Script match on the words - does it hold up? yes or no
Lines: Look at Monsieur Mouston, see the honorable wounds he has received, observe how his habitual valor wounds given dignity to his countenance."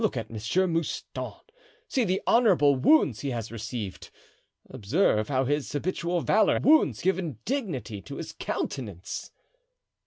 yes